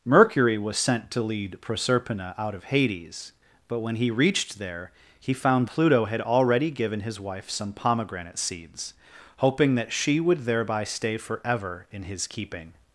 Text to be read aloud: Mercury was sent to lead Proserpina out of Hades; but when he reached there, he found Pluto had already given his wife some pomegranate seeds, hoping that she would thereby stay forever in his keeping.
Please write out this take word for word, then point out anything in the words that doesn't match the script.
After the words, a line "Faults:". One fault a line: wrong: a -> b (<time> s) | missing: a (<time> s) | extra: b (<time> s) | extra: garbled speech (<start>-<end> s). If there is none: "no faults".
Mercury was sent to lead Proserpina out of Hades; but when he reached there, he found Pluto had already given his wife some pomegranate seeds, hoping that she would thereby stay forever in his keeping.
Faults:
no faults